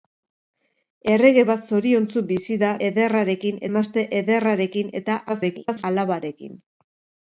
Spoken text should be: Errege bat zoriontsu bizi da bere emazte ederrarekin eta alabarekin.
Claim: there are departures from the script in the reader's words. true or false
true